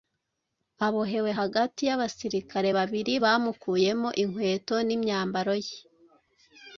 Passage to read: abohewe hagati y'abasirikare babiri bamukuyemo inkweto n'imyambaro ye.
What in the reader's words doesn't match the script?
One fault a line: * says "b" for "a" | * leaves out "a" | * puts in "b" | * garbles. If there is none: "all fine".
all fine